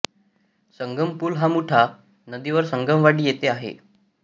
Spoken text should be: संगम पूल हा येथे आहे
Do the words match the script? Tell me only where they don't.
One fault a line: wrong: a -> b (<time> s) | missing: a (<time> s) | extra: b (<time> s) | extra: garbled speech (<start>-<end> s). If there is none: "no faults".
extra: मुठा नदीवर संगमवाडी (1.5 s)